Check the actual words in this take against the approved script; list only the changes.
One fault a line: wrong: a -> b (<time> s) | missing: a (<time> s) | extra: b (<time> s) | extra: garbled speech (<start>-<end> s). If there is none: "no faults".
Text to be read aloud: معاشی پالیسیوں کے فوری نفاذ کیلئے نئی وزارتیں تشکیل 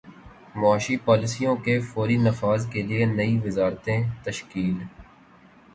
no faults